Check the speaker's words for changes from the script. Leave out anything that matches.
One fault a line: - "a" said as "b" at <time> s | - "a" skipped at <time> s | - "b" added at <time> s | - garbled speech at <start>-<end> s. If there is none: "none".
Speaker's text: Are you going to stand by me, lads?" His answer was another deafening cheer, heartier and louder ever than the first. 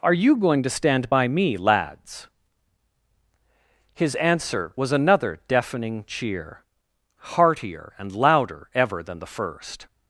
none